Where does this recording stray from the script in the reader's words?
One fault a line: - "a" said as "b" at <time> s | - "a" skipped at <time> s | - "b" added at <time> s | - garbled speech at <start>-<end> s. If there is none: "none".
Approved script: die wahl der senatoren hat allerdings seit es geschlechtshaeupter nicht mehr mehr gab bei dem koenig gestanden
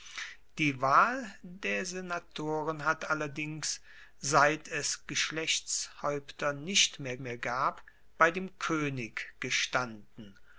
none